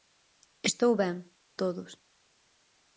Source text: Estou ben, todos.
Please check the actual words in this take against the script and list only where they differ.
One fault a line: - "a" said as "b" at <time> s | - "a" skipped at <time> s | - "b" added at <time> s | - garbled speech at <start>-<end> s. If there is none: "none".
none